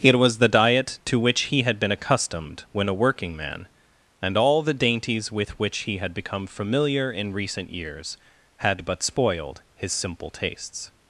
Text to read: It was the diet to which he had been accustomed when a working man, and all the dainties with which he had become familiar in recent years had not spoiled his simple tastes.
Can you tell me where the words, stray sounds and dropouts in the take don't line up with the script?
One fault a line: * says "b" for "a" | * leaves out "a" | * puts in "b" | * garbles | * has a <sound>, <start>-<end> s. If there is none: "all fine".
* says "but" for "not"